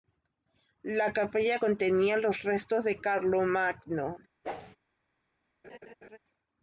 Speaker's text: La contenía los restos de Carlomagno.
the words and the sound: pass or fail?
fail